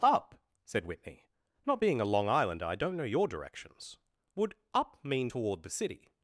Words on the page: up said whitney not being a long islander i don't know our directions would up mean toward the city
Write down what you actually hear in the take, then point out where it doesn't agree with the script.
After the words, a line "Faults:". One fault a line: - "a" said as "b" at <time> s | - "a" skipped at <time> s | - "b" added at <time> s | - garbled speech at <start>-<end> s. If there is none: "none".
up said whitney not being a long islander i don't know your directions would up mean toward the city
Faults:
- "our" said as "your" at 3.0 s